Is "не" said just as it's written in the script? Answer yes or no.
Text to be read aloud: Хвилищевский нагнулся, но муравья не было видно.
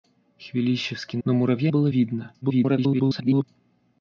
no